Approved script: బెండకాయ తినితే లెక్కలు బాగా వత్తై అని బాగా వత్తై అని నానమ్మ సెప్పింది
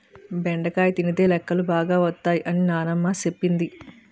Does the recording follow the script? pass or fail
fail